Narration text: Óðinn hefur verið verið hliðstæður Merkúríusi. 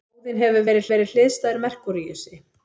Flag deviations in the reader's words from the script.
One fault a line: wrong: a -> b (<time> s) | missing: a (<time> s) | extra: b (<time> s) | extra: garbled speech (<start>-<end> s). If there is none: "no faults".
no faults